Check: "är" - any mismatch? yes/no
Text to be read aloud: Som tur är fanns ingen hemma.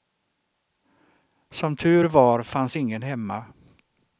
yes